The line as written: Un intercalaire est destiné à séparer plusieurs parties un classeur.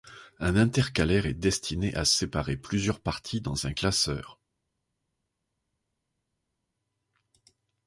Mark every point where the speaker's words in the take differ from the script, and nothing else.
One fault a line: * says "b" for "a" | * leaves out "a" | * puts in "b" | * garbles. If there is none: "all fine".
* puts in "dans"